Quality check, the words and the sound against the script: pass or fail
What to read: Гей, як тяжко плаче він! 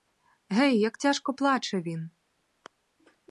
pass